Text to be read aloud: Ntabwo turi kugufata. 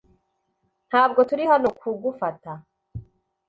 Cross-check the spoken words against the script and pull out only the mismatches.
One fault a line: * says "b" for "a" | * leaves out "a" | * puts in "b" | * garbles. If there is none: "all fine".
* puts in "hano"